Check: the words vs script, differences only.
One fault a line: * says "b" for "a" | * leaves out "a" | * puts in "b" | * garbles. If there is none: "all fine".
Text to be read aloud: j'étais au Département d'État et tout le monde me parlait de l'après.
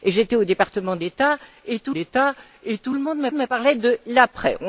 * puts in "d'État et tout"
* puts in "me"